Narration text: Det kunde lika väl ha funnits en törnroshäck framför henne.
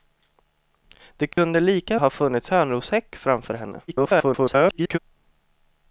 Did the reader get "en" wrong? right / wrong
wrong